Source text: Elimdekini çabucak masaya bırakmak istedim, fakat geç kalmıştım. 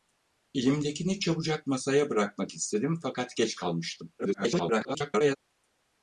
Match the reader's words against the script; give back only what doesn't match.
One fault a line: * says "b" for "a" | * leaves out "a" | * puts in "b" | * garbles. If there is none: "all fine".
* garbles